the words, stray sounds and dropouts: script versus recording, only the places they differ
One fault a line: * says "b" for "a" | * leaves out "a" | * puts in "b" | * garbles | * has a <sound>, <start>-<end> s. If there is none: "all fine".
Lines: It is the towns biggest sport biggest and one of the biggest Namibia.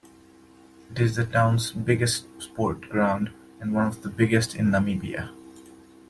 * says "ground" for "biggest"
* puts in "in"